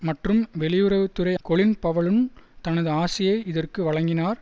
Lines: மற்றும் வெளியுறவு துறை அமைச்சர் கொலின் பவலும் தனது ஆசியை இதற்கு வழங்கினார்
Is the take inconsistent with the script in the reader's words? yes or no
yes